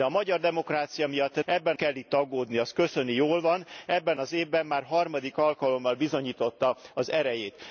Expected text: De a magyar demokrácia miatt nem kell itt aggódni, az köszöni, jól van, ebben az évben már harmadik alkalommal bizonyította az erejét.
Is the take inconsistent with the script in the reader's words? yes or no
yes